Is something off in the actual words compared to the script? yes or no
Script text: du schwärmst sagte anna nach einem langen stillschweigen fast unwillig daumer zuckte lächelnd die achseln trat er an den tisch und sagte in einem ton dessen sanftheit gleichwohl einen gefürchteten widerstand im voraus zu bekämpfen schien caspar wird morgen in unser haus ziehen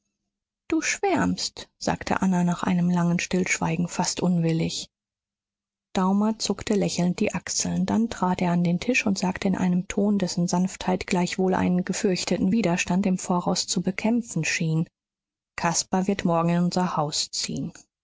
yes